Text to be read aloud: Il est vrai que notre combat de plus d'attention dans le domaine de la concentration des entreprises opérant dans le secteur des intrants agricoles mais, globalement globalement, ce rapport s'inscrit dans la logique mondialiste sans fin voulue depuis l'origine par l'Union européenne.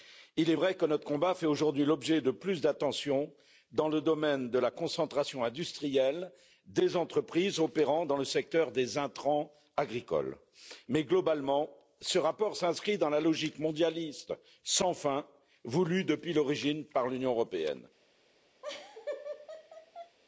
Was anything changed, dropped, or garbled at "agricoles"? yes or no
no